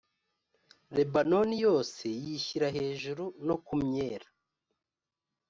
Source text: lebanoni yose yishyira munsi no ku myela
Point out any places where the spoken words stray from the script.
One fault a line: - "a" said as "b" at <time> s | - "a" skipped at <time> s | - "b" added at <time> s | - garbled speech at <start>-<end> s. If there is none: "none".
- "munsi" said as "hejuru" at 2.8 s